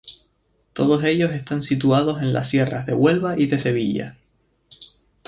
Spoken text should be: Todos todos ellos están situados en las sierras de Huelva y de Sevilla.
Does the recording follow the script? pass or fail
fail